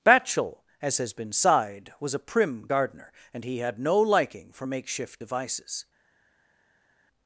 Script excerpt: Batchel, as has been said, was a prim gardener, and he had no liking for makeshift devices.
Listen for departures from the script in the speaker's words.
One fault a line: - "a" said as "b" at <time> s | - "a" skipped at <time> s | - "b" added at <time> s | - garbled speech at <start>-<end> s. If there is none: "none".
- "said" said as "sighed" at 1.3 s